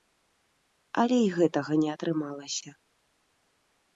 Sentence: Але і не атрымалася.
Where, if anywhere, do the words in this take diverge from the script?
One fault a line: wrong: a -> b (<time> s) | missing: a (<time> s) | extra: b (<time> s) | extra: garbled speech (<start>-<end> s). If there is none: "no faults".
extra: гэтага (1.4 s)